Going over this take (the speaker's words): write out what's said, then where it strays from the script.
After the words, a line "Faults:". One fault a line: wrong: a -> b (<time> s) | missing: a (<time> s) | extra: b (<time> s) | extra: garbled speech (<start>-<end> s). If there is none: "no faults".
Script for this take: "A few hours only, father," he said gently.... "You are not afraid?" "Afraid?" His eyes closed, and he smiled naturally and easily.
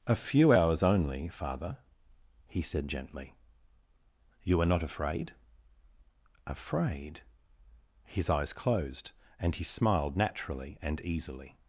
"A few hours only, father," he said gently.... "You are not afraid?" "Afraid?" His eyes closed, and he smiled naturally and easily.
Faults:
no faults